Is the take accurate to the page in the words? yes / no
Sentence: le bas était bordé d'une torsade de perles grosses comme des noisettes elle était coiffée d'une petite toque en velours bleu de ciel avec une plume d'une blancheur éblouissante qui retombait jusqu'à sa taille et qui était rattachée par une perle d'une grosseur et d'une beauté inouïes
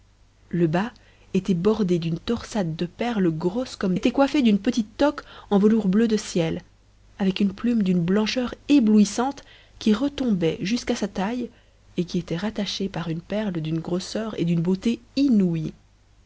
no